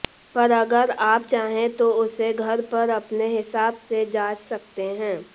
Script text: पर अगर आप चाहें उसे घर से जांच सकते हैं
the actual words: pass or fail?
fail